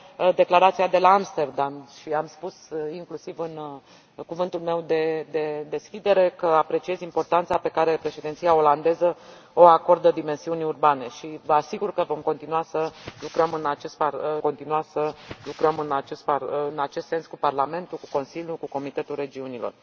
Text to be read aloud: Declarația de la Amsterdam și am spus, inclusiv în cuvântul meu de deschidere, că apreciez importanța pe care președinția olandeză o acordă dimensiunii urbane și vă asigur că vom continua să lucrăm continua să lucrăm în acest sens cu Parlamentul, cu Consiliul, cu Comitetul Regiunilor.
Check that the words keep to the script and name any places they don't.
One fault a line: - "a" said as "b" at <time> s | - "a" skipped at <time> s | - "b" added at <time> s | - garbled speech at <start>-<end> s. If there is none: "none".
none